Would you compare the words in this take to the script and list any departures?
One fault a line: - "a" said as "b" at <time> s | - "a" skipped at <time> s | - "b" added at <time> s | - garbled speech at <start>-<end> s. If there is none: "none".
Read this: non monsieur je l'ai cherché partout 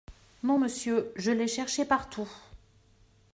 none